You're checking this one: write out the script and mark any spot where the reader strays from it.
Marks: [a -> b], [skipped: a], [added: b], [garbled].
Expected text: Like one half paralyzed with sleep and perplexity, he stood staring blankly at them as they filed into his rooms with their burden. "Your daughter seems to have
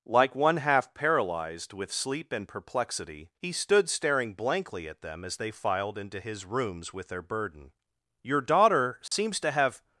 Like one half paralyzed with sleep and perplexity, he stood staring blankly at them as they filed into his rooms with their burden. "Your daughter seems to have